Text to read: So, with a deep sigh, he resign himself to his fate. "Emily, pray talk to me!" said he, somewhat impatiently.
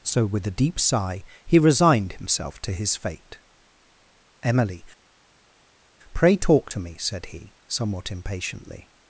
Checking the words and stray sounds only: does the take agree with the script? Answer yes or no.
no